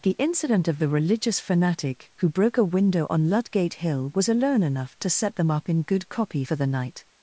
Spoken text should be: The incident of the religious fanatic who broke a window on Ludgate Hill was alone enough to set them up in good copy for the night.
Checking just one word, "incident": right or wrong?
right